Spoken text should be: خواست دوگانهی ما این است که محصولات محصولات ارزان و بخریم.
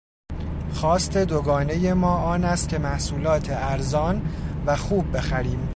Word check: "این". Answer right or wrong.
wrong